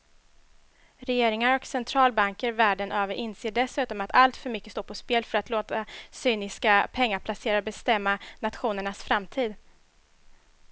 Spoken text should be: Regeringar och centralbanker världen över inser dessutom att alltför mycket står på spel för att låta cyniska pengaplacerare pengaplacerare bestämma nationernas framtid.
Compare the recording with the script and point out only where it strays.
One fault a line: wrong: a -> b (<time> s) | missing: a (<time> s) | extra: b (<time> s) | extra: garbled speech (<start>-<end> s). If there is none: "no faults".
missing: pengaplacerare (7.6 s)